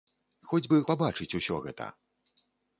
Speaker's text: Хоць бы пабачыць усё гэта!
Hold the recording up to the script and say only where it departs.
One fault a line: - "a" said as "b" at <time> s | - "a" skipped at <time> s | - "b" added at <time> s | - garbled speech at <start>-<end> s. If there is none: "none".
none